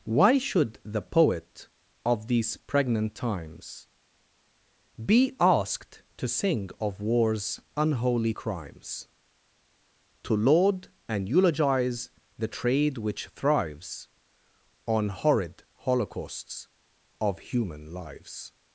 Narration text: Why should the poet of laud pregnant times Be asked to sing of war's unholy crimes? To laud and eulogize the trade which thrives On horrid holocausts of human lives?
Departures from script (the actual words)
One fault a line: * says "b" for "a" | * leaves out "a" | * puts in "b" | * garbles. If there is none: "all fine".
* says "these" for "laud"